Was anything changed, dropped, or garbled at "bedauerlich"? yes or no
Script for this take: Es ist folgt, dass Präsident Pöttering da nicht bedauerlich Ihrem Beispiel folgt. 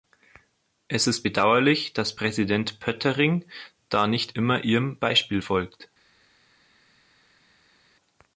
yes